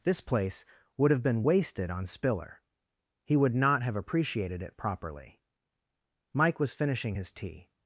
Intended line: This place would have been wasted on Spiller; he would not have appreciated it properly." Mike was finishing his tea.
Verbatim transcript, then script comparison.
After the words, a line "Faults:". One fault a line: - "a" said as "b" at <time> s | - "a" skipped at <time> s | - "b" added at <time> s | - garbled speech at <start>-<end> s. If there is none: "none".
This place would have been wasted on Spiller; he would not have appreciated it properly." Mike was finishing his tea.
Faults:
none